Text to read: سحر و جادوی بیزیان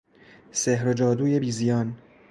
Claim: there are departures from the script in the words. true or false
false